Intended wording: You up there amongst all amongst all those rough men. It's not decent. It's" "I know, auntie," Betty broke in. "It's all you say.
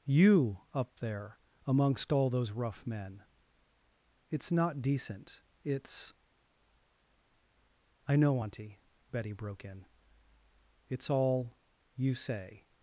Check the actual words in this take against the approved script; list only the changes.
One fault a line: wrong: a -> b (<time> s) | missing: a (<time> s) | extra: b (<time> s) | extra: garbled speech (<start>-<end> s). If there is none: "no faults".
missing: amongst all (2.3 s)